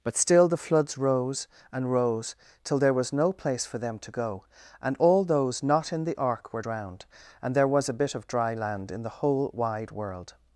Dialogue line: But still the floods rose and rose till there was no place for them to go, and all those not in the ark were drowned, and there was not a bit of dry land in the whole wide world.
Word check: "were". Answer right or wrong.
right